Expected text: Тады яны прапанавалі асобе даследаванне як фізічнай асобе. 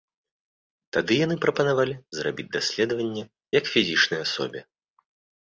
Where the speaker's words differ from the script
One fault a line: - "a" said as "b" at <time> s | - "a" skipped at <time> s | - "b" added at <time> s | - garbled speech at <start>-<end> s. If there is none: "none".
- "асобе" said as "зрабіць" at 2.2 s